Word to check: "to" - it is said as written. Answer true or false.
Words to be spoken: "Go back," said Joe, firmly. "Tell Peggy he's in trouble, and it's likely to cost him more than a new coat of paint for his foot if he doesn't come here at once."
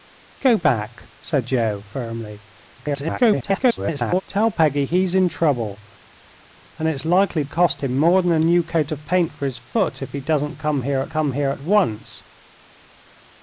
false